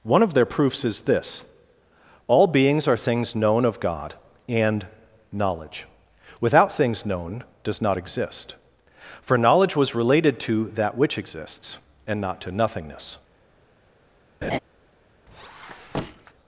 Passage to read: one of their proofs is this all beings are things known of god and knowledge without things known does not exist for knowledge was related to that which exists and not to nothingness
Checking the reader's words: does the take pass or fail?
pass